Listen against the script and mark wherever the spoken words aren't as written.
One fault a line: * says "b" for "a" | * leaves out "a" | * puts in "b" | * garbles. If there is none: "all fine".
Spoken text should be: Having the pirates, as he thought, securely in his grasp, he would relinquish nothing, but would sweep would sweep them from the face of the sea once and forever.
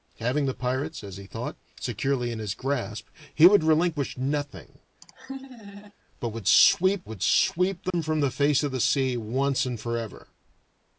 all fine